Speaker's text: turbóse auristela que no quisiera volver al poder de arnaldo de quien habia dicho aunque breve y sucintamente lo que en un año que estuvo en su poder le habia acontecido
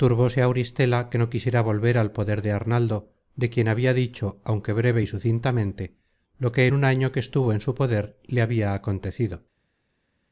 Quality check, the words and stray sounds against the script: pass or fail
pass